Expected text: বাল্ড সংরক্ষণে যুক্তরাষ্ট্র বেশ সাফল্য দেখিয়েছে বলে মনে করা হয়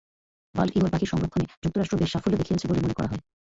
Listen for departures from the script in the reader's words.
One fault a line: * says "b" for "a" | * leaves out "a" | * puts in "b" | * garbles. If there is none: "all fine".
* puts in "ইগল পাখির"